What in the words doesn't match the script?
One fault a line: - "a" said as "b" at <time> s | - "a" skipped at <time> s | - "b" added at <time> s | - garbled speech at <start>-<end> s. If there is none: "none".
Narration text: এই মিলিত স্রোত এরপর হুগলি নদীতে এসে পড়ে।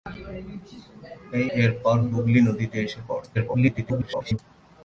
- "মিলিত স্রোত" skipped at 1.5 s
- garbled speech at 3.3-4.4 s